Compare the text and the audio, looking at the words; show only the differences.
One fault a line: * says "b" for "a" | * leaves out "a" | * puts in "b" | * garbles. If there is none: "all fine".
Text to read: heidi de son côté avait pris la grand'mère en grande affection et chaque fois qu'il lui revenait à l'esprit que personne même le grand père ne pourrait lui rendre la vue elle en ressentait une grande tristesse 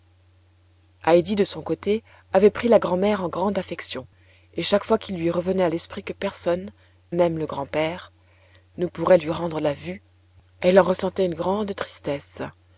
all fine